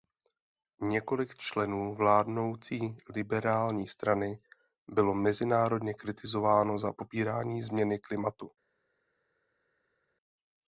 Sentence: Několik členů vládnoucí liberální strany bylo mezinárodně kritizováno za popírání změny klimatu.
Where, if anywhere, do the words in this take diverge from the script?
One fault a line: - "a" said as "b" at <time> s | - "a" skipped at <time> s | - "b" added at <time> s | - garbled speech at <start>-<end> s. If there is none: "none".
none